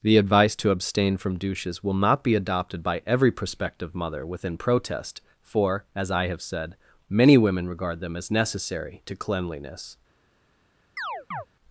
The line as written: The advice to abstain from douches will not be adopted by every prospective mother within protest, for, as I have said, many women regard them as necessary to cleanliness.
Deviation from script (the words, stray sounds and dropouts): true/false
true